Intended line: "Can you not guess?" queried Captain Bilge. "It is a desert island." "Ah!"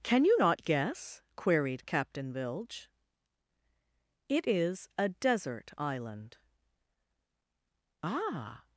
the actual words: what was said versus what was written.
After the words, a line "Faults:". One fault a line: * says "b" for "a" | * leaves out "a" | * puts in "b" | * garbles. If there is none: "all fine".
"Can you not guess?" queried Captain Bilge. "It is a desert island." "Ah!"
Faults:
all fine